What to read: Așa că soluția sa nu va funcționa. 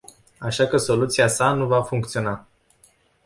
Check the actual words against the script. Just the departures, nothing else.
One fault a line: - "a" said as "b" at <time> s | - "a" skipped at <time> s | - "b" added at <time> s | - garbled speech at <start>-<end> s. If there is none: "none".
none